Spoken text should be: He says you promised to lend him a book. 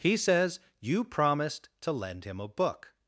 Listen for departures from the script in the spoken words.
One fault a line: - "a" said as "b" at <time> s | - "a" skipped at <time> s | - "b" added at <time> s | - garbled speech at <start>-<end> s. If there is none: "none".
none